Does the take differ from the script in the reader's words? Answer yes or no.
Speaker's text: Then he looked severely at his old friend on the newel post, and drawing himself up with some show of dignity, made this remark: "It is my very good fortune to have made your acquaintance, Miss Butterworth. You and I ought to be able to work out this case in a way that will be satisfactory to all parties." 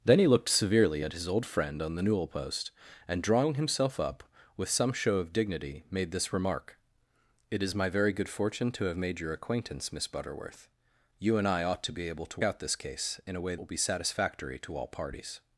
yes